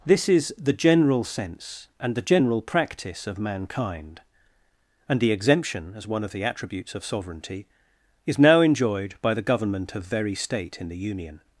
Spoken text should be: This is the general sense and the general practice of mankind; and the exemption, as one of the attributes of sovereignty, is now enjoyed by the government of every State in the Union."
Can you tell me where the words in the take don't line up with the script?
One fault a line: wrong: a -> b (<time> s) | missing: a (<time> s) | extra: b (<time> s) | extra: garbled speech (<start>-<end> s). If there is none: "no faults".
wrong: every -> very (10.0 s)